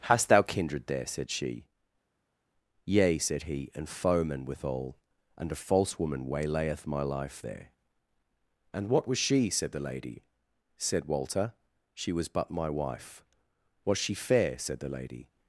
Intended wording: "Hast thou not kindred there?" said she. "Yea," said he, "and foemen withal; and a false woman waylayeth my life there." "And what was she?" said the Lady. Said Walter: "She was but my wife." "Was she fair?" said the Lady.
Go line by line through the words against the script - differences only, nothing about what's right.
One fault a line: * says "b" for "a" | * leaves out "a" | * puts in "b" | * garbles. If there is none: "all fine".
* leaves out "not"